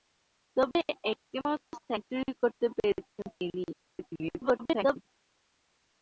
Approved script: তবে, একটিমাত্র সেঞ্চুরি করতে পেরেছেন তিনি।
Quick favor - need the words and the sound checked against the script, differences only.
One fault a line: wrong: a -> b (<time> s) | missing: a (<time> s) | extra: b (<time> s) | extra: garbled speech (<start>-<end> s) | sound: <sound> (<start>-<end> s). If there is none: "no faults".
extra: garbled speech (3.7-5.0 s)